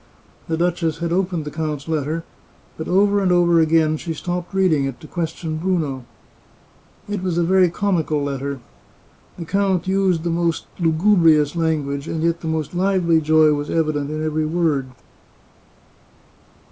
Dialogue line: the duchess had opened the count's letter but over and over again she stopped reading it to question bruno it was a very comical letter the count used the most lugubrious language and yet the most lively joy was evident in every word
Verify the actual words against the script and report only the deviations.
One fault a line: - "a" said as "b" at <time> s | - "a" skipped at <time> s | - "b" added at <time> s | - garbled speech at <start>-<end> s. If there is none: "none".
none